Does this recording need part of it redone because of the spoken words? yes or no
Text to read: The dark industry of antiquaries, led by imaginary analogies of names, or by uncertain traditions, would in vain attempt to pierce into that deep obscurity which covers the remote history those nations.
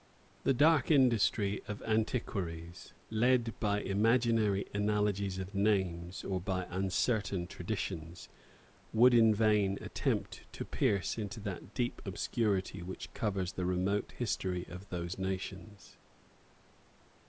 yes